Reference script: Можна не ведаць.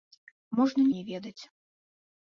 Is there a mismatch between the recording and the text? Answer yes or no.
no